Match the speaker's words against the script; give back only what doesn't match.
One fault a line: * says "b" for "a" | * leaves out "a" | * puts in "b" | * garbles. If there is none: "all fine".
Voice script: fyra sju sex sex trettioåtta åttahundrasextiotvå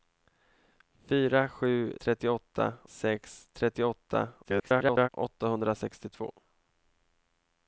* says "trettioåtta" for "sex"
* garbles